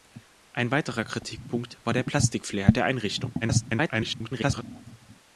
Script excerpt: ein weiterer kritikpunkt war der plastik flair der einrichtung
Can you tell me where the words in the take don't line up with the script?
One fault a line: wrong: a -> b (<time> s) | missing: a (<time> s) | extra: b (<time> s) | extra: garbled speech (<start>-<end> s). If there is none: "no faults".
extra: garbled speech (3.4-4.6 s)